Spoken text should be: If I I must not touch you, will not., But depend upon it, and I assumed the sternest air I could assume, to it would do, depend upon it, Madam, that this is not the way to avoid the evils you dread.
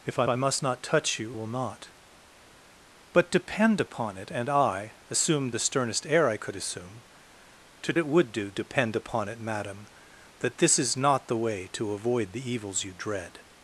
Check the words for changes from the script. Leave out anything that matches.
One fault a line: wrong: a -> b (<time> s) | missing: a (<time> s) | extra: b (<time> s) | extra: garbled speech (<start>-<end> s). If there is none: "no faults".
no faults